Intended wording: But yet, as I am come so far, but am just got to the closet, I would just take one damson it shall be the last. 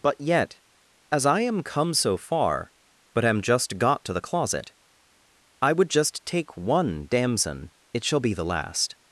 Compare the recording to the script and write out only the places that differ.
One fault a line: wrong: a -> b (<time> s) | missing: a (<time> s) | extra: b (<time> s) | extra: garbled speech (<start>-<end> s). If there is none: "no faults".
no faults